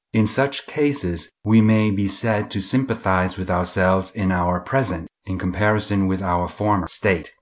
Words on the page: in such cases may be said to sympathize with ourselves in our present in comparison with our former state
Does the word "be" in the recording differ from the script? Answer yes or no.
no